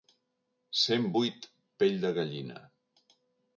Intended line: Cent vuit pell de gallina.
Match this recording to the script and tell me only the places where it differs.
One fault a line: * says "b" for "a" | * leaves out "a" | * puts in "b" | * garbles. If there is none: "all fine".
all fine